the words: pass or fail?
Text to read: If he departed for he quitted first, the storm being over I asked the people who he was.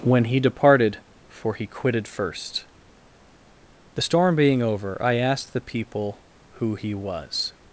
fail